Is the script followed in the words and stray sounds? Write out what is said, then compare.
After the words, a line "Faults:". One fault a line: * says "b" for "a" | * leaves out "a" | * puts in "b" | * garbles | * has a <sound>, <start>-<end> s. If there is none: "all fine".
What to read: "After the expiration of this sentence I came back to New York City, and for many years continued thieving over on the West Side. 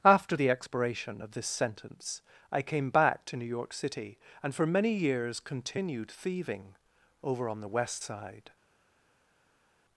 "After the expiration of this sentence I came back to New York City, and for many years continued thieving over on the West Side.
Faults:
all fine